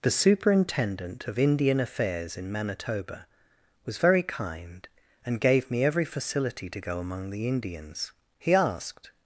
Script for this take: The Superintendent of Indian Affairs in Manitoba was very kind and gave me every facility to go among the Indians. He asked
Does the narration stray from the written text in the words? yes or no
no